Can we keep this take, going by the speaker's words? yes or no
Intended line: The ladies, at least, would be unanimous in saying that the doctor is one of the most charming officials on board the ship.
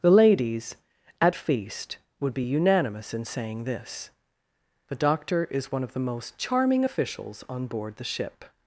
no